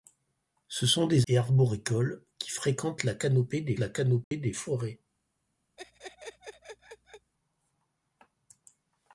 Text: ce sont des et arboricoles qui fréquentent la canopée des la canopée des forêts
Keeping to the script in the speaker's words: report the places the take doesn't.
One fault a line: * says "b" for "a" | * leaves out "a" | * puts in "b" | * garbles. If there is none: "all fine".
all fine